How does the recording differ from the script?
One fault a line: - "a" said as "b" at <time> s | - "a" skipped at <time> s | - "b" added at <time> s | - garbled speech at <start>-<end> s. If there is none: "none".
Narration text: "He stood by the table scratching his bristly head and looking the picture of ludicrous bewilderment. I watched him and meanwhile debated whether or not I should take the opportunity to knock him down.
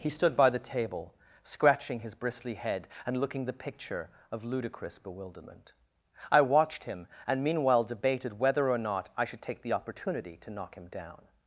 none